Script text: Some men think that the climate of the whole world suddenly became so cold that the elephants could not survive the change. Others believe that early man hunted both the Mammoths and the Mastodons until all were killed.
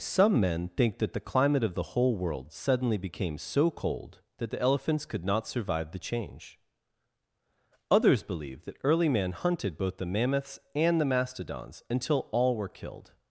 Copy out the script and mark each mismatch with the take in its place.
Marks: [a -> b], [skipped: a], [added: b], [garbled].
Some men think that the climate of the whole world suddenly became so cold that the elephants could not survive the change. Others believe that early man hunted both the Mammoths and the Mastodons until all were killed.